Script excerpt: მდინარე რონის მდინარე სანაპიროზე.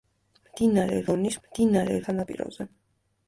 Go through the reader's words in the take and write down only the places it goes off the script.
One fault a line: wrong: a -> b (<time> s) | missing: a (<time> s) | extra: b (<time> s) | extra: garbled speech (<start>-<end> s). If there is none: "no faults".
no faults